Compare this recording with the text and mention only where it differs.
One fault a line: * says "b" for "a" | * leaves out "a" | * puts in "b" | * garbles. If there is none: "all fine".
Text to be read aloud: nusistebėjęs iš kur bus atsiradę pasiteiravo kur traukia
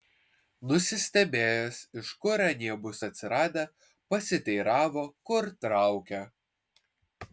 * puts in "anie"